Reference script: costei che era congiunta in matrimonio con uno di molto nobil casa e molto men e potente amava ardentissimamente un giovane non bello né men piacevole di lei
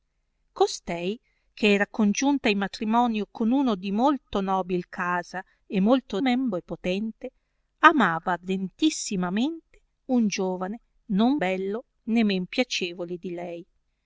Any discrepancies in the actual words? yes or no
no